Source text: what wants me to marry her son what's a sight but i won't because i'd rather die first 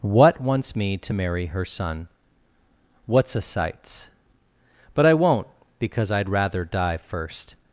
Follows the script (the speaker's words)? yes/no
no